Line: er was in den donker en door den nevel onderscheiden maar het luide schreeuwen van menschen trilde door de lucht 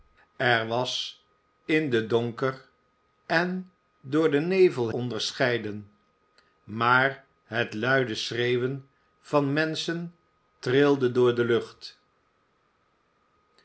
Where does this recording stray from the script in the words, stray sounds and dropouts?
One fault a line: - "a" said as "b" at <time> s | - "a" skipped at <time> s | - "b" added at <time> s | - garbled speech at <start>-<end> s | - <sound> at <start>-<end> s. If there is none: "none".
none